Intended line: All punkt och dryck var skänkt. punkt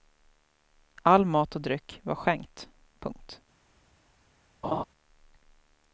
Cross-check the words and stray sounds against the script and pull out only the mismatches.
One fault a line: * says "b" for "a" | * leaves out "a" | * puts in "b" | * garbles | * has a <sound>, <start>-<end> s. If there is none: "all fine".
* says "mat" for "punkt"
* has a laugh, 4.6-4.8 s